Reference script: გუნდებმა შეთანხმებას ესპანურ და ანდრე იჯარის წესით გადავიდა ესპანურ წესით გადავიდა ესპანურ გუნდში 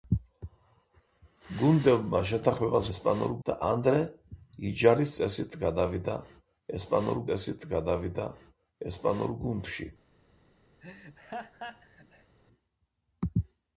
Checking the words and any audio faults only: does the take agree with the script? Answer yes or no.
no